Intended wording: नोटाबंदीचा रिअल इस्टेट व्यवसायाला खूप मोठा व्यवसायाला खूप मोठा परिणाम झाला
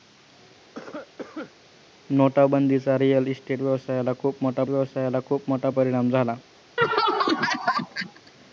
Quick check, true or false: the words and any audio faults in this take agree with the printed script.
false